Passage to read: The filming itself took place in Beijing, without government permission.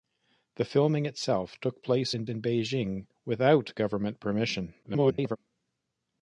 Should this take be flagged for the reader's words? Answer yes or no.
yes